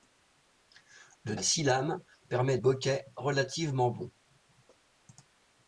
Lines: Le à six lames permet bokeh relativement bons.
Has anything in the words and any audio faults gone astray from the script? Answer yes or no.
no